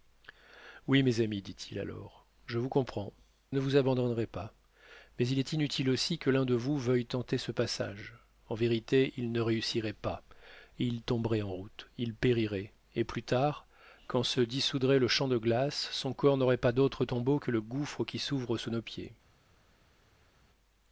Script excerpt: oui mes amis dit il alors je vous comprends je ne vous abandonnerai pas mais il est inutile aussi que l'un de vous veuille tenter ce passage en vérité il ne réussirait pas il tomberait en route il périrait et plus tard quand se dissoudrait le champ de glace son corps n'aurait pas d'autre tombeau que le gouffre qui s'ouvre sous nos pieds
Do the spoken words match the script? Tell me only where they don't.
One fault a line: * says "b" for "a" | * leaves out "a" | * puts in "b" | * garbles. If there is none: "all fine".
* leaves out "je"